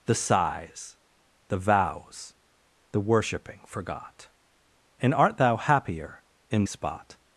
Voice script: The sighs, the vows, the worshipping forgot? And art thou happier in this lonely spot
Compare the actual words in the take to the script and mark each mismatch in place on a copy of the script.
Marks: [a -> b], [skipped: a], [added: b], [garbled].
The sighs, the vows, the worshipping forgot? And art thou happier in [skipped: this lonely] spot